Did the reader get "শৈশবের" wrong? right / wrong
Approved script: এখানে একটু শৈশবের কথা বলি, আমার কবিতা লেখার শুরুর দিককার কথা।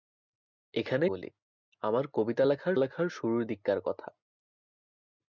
wrong